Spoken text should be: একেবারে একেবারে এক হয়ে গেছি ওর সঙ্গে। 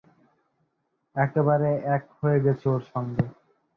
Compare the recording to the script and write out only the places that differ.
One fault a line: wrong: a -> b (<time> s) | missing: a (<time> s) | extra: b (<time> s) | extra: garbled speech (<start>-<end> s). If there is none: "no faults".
missing: একেবারে (1.7 s)